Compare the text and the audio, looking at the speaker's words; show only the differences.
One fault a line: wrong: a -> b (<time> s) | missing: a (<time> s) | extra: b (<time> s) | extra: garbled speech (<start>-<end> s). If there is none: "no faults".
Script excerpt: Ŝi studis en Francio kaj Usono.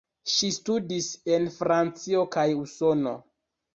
no faults